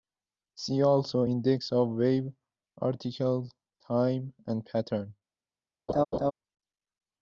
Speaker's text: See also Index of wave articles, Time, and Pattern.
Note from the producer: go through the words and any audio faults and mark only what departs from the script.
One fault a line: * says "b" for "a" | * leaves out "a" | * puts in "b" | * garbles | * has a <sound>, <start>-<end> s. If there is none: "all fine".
* has a laugh, 5.9-6.3 s